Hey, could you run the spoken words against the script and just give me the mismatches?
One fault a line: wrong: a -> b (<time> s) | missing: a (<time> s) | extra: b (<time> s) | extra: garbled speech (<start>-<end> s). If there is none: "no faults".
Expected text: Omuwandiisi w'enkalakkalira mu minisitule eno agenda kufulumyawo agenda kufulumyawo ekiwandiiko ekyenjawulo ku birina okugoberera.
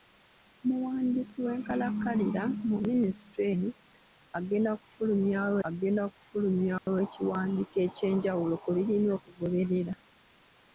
no faults